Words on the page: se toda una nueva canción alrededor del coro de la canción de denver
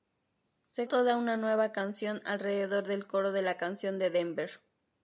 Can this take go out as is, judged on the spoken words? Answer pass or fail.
pass